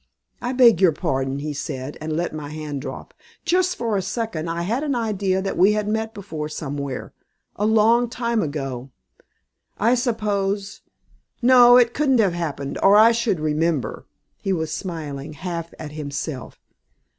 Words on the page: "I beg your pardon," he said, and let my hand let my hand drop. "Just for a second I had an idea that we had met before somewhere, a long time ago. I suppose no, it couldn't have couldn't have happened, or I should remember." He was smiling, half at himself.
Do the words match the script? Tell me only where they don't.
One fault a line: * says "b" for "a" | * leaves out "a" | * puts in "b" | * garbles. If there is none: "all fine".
* leaves out "let my hand"
* leaves out "couldn't have"